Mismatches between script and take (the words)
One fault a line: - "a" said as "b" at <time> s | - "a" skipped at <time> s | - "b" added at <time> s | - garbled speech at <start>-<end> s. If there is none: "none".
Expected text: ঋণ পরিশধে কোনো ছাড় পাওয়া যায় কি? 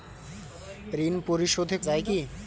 - "কোনো ছাড় পাওয়া" skipped at 1.8 s